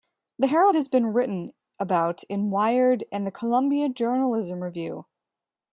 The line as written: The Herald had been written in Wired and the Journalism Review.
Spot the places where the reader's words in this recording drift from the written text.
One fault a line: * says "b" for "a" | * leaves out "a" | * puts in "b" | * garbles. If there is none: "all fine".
* says "has" for "had"
* puts in "about"
* puts in "Columbia"